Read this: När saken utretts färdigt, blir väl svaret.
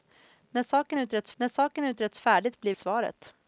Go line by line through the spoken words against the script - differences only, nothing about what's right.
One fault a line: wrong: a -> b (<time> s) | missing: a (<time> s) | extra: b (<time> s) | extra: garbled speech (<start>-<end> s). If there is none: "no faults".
extra: när saken utretts (1.4 s)
missing: väl (2.7 s)